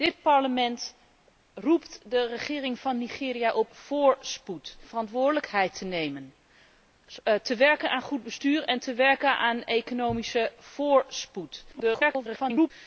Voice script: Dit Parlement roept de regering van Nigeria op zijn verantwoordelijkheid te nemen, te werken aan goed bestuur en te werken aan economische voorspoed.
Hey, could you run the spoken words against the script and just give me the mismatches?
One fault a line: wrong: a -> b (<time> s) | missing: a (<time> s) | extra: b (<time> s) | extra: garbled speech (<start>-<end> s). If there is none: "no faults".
wrong: zijn -> voorspoed (3.7 s)
extra: garbled speech (11.7-12.7 s)